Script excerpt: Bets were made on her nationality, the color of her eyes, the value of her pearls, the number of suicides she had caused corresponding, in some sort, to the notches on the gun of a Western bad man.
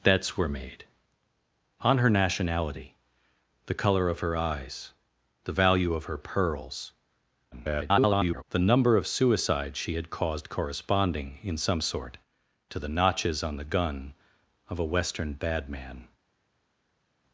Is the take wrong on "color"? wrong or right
right